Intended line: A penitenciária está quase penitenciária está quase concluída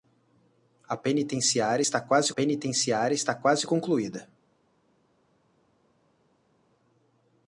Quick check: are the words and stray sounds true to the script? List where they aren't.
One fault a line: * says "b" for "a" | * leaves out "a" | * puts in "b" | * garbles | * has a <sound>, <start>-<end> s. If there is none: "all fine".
all fine